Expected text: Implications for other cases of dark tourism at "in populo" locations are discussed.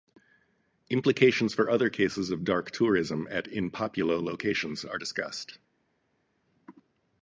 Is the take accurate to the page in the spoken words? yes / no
yes